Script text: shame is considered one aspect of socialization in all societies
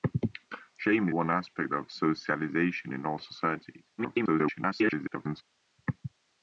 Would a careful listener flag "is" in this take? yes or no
yes